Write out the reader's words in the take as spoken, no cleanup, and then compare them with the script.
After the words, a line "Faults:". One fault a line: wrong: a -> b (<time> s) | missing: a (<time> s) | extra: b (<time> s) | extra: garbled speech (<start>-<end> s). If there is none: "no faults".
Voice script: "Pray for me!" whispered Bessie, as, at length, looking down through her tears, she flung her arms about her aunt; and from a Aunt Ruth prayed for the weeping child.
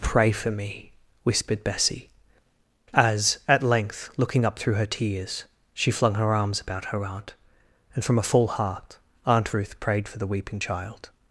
"Pray for me!" whispered Bessie, as, at length, looking up through her tears, she flung her arms about her aunt; and from a full heart Aunt Ruth prayed for the weeping child.
Faults:
wrong: down -> up (4.4 s)
extra: full heart (8.2 s)